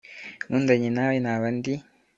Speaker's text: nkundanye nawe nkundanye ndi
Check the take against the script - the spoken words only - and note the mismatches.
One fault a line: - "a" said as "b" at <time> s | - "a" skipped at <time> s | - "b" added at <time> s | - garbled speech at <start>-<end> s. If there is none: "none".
- "nkundanye" said as "naba" at 1.2 s